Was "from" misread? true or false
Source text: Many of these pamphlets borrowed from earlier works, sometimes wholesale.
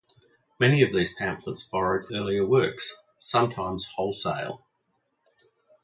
true